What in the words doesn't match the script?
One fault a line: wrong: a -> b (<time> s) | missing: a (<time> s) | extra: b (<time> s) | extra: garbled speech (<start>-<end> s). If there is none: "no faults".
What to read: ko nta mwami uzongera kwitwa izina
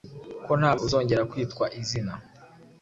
missing: mwami (0.7 s)